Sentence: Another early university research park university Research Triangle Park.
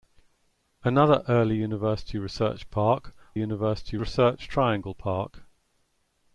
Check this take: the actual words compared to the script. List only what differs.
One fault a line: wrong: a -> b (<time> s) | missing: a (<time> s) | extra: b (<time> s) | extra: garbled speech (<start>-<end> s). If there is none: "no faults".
no faults